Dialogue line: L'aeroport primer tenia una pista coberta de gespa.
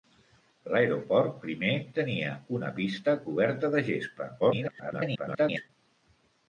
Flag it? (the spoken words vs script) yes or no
yes